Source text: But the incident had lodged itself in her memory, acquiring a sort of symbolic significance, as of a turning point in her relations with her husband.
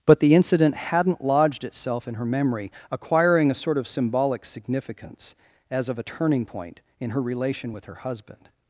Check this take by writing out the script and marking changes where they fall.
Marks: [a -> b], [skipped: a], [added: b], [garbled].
But the incident [had -> hadn't] lodged itself in her memory, acquiring a sort of symbolic significance, as of a turning point in her [relations -> relation] with her husband.